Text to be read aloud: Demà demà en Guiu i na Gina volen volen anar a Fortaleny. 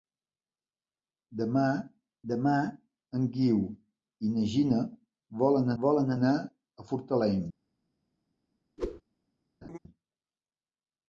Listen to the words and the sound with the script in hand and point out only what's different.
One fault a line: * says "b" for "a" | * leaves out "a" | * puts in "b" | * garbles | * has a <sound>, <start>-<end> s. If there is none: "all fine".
* has a whoosh, 8.8-9.0 s
* has a laugh, 9.6-9.8 s